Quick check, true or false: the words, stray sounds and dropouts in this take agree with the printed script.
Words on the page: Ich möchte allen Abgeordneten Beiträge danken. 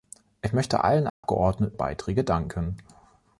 false